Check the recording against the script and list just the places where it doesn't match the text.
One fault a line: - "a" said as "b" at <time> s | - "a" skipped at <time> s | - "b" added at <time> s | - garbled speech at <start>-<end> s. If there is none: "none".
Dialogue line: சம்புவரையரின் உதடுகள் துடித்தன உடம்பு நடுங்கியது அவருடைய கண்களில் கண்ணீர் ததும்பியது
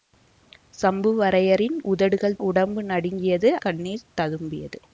- "துடித்தன" skipped at 2.4 s
- "அவருடைய கண்களில்" skipped at 3.5 s